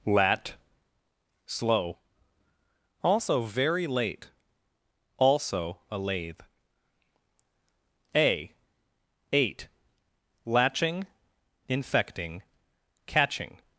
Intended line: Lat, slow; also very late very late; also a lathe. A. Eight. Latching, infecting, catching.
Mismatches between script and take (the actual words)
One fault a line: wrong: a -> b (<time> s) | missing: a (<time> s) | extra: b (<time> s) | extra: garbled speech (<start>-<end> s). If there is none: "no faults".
missing: very late (4.3 s)